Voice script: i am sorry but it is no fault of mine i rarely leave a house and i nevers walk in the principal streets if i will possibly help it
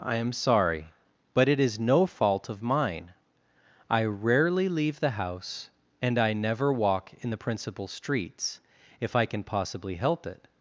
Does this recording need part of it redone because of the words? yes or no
yes